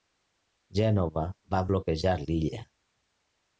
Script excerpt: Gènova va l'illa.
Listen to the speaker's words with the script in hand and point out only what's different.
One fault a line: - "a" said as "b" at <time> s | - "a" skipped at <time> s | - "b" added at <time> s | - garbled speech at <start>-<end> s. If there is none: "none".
- "bloquejar" added at 1.7 s